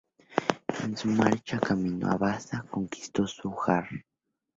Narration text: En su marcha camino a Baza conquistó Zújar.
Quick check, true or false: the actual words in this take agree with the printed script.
true